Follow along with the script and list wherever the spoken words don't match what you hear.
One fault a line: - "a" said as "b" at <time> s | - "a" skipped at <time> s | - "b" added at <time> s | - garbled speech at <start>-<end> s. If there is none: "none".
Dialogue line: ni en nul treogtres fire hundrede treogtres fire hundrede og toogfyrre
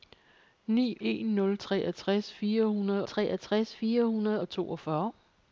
none